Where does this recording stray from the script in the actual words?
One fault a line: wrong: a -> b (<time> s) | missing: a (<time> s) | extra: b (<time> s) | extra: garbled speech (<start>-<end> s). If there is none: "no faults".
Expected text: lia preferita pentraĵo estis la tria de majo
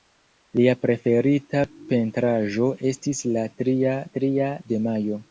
extra: tria (4.2 s)